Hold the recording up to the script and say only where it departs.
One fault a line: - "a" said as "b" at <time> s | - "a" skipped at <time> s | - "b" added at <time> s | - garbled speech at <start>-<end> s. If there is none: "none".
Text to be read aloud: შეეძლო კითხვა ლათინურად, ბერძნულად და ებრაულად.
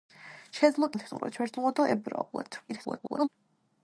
- "კითხვა" skipped at 0.9 s
- garbled speech at 2.7-3.3 s